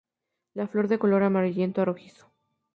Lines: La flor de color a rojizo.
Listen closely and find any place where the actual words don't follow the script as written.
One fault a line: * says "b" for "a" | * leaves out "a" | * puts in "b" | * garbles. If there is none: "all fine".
* puts in "amarillento"